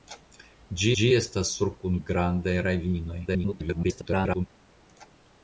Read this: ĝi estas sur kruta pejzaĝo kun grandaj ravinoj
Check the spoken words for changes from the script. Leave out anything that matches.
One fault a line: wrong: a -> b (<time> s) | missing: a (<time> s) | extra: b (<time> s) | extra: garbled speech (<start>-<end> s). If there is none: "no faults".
extra: ĝi (1.0 s)
missing: kruta pejzaĝo (1.7 s)
extra: garbled speech (3.3-4.5 s)